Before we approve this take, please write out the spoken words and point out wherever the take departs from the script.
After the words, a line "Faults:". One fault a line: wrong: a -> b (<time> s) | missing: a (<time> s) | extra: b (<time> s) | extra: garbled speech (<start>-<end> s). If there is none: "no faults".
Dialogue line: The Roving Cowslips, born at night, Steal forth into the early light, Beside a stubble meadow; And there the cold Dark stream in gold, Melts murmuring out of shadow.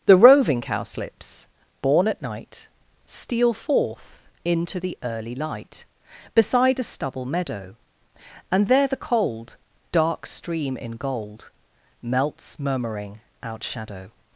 The Roving Cowslips, born at night, Steal forth into the early light, Beside a stubble meadow; And there the cold Dark stream in gold, Melts murmuring out shadow.
Faults:
missing: of (13.6 s)